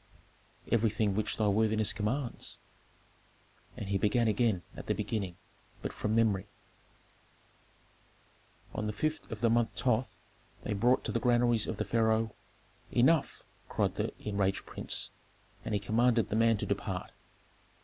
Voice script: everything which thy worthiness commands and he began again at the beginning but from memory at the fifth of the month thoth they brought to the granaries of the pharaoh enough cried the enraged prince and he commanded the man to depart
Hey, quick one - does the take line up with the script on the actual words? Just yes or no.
no